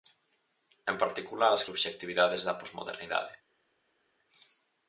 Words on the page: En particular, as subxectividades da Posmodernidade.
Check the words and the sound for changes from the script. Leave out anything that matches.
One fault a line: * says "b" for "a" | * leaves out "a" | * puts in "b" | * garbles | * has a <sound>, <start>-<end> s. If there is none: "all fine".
all fine